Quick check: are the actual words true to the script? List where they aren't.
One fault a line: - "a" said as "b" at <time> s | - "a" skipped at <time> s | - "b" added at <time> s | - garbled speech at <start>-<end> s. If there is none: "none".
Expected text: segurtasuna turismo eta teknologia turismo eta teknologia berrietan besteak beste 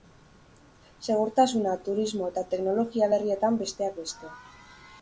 - "turismo eta teknologia" skipped at 3.1 s